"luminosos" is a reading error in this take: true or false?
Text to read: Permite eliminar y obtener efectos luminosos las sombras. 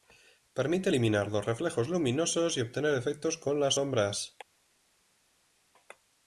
true